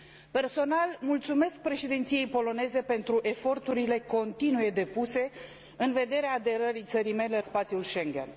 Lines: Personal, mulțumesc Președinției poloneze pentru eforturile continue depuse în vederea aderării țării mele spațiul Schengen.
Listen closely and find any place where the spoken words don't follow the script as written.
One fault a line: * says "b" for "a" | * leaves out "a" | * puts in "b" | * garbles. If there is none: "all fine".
all fine